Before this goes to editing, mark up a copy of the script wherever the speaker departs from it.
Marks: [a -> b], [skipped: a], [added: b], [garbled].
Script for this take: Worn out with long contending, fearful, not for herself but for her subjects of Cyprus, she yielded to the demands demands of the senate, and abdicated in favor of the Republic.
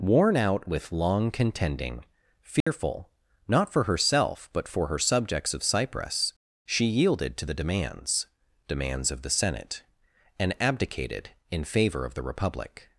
Worn out with long contending, fearful, not for herself but for her subjects of Cyprus, she yielded to the demands demands of the senate, and abdicated in favor of the Republic.